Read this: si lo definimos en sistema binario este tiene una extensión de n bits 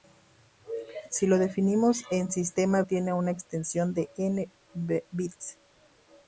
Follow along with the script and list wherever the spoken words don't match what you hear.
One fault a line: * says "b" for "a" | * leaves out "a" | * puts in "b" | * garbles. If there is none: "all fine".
* leaves out "binario este"